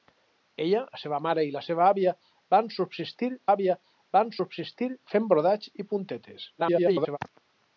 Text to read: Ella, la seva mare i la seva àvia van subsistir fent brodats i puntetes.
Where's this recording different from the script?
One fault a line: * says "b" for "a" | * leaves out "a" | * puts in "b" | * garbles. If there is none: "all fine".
* puts in "àvia van subsistir"
* garbles